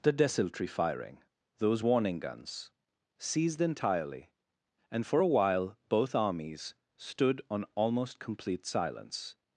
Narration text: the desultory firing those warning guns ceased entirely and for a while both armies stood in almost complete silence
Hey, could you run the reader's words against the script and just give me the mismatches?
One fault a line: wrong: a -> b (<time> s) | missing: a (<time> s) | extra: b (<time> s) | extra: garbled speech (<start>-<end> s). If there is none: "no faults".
wrong: in -> on (7.5 s)